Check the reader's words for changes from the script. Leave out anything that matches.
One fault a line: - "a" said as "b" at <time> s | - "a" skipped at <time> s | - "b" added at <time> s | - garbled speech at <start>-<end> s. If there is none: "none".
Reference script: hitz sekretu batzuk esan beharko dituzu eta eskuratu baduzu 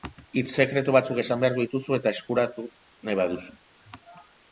- "nahi" added at 3.1 s